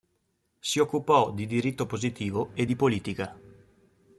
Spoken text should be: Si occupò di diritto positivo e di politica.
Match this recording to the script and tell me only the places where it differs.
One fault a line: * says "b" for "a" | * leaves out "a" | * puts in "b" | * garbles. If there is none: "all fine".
all fine